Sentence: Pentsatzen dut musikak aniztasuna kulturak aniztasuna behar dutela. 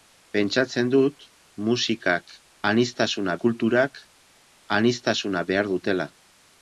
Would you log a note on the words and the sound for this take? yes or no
no